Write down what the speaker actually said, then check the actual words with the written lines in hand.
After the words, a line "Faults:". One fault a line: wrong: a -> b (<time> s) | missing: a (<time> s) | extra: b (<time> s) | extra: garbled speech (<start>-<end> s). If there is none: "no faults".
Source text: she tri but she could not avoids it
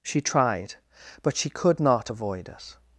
she tried but she could not avoid it
Faults:
wrong: tri -> tried (0.2 s)
wrong: avoids -> avoid (2.1 s)